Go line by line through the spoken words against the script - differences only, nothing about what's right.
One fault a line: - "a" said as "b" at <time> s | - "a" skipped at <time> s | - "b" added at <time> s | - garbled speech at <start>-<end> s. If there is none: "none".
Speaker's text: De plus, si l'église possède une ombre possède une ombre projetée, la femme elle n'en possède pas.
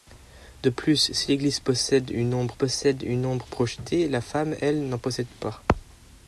none